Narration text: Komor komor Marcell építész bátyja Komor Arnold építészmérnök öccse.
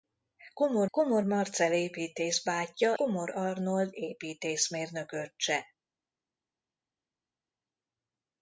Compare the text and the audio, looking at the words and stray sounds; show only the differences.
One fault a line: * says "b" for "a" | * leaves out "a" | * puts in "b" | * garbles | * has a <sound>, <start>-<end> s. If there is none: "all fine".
all fine